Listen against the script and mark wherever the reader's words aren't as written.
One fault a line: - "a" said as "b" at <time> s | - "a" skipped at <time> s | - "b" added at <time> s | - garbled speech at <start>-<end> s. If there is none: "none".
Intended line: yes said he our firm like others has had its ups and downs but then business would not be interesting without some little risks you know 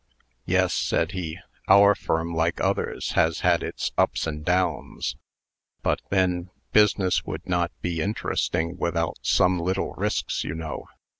none